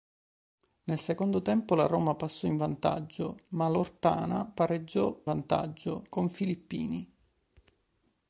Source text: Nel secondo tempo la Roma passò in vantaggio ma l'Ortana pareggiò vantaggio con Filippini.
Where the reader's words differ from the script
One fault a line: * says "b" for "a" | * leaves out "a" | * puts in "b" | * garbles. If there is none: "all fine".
all fine